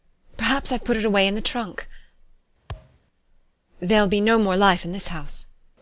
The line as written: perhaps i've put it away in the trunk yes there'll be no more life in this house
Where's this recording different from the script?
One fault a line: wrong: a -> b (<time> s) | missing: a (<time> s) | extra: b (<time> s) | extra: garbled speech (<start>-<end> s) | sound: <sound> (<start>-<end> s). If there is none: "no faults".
missing: yes (1.9 s)
sound: thud (2.7-3.0 s)